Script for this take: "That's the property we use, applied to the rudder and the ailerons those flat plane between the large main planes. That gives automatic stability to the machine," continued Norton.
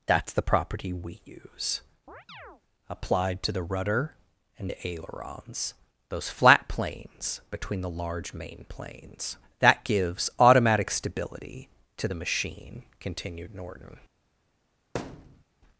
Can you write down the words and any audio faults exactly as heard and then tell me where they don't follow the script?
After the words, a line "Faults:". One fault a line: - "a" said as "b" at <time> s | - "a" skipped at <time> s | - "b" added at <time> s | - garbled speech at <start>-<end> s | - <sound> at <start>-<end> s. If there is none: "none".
"That's the property we use, applied to the rudder and the ailerons those flat planes between the large main planes. That gives automatic stability to the machine," continued Norton.
Faults:
- chirp at 2.1-2.6 s
- "plane" said as "planes" at 6.7 s
- thud at 14.9-15.4 s